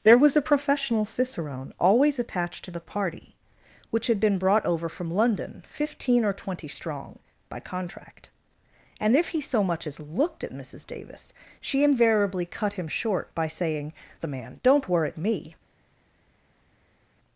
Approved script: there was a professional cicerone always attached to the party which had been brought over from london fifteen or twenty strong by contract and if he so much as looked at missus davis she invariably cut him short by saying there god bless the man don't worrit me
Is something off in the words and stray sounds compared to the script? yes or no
yes